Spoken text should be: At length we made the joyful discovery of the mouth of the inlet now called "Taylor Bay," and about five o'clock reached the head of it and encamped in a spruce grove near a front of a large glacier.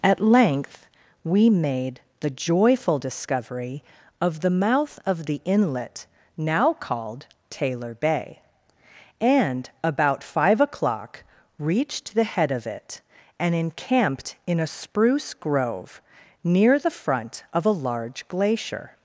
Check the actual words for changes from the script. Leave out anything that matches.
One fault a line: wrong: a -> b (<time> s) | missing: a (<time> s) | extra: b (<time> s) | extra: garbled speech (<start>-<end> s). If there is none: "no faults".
wrong: a -> the (16.8 s)